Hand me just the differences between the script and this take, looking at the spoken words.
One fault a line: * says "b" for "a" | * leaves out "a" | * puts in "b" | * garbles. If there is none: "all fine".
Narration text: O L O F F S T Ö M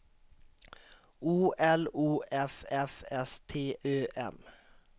all fine